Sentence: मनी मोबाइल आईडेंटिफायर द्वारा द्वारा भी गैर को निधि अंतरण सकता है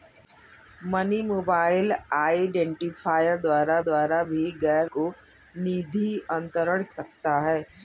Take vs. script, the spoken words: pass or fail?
pass